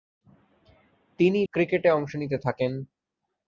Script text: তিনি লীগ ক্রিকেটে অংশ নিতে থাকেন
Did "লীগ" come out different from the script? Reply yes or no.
yes